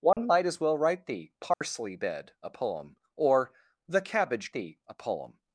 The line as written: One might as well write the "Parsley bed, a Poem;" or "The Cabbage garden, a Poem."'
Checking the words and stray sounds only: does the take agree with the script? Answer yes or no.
no